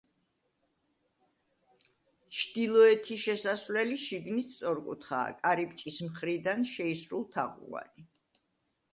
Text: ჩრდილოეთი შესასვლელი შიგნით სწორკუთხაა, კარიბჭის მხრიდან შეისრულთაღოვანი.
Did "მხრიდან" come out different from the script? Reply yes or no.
no